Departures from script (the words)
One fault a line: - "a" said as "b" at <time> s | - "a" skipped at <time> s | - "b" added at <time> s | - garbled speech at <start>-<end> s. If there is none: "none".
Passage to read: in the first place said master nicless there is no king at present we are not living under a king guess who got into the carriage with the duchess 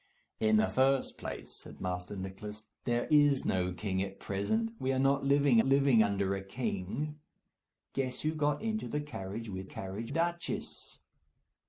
- "living" added at 5.6 s
- "the" said as "carriage" at 9.6 s